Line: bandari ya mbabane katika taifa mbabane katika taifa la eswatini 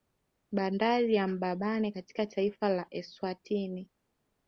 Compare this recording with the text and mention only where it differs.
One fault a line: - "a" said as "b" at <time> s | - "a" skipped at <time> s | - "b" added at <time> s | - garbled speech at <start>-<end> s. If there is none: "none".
- "mbabane katika taifa" skipped at 2.7 s